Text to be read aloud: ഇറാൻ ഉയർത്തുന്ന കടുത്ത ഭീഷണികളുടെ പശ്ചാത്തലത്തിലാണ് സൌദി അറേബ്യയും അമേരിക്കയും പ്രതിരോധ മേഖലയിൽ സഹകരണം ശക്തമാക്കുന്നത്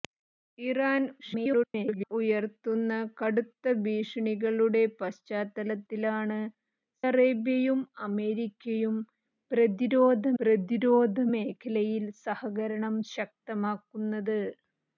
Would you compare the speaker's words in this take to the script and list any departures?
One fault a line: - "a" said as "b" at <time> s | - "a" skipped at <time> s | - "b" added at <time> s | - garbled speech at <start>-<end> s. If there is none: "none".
- garbled speech at 1.2-2.1 s
- "സൌദി" skipped at 6.4 s
- "പ്രതിരോധ" added at 10.4 s